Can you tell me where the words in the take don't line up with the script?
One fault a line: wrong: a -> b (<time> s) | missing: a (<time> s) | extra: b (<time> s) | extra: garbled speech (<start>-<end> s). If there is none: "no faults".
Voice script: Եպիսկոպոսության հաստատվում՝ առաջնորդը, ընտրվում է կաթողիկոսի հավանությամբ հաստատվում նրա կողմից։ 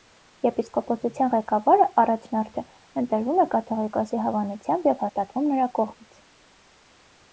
wrong: հաստատվում -> ղեկավարը (1.3 s)
extra: և (4.9 s)